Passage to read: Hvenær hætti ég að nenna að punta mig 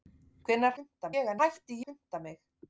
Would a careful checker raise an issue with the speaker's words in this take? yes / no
yes